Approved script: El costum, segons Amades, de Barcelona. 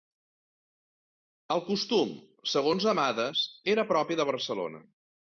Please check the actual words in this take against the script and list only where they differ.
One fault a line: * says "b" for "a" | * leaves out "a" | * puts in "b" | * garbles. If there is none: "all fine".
* puts in "era propi"